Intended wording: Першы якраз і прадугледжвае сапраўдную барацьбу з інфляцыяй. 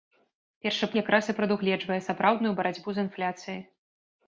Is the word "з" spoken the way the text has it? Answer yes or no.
yes